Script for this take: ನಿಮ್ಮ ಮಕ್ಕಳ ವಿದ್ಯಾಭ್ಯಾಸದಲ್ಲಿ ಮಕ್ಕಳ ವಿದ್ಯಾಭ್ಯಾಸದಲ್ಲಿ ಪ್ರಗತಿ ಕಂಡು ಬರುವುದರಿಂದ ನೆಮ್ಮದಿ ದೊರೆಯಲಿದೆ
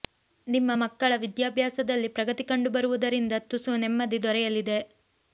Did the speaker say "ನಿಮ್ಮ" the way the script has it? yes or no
yes